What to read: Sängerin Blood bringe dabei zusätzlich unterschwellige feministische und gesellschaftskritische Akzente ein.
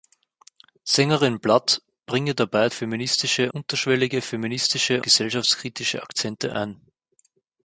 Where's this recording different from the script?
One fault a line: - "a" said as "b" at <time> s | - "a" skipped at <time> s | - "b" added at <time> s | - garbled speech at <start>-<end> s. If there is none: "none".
- "zusätzlich" said as "feministische" at 2.7 s
- "und" skipped at 5.0 s